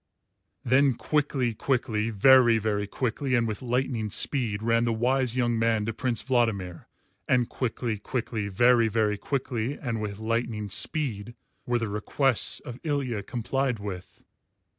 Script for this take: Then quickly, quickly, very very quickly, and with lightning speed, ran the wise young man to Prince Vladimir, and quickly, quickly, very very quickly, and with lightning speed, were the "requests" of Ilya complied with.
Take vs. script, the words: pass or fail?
pass